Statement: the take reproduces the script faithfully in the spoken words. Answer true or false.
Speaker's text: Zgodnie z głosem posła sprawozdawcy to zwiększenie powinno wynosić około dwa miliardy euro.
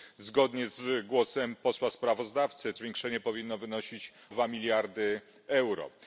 false